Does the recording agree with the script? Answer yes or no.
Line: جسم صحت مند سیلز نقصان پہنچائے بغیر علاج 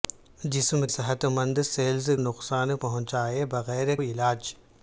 yes